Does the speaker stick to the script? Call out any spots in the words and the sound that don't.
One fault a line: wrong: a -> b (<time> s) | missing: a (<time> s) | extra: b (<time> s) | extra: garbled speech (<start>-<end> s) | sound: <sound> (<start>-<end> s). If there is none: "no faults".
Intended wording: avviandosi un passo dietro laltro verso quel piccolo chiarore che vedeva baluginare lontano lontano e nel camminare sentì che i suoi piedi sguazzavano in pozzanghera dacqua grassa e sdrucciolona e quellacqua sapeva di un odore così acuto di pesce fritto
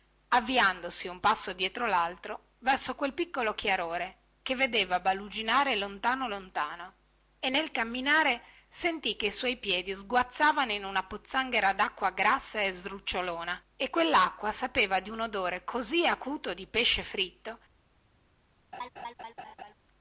extra: una (10.8 s)
sound: laugh (18.7-19.7 s)